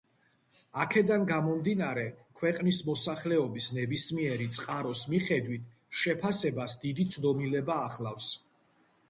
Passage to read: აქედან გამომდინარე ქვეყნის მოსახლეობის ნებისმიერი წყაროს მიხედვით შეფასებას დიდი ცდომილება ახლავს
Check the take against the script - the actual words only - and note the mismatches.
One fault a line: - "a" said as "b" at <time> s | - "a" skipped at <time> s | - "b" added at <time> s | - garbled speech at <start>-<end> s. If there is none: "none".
none